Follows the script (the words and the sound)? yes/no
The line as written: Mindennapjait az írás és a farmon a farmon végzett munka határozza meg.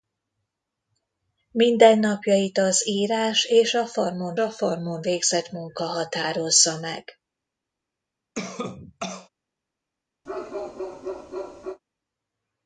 no